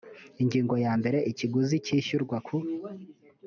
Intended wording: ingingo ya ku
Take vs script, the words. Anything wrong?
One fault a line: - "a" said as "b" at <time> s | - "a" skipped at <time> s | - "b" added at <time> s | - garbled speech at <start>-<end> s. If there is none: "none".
- "mbere ikiguzi cyishyurwa" added at 1.0 s